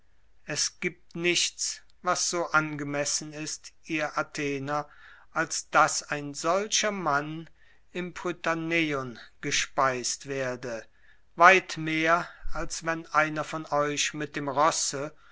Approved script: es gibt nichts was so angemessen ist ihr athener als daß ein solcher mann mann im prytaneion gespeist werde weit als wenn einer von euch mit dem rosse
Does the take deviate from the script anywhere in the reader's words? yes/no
yes